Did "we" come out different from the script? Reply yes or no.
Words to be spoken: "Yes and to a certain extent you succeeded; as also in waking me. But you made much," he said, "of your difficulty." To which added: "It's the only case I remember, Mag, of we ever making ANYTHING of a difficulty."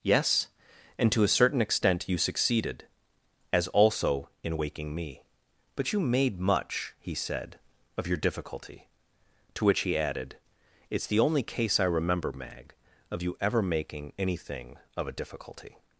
yes